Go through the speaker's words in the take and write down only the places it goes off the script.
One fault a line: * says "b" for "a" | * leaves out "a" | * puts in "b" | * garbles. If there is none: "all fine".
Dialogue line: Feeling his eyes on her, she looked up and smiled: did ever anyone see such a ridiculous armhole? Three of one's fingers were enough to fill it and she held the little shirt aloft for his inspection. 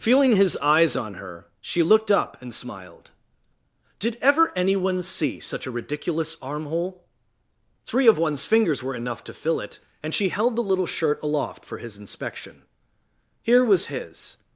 * puts in "Here was his"